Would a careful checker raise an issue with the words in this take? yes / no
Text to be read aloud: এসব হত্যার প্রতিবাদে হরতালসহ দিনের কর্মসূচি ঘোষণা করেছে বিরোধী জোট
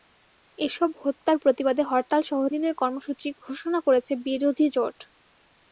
no